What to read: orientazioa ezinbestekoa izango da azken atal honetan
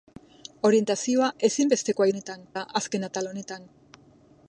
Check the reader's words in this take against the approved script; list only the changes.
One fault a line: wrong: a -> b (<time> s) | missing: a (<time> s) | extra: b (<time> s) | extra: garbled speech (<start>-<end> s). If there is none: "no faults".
wrong: izango -> honetan (2.1 s)